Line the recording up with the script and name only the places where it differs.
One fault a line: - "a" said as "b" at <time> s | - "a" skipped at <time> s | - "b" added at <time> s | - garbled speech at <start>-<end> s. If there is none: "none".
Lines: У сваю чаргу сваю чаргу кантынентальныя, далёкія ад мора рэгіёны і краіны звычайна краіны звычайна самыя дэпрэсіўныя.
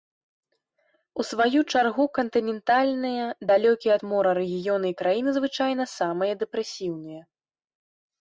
- "сваю чаргу" skipped at 2.0 s
- "краіны звычайна" skipped at 5.8 s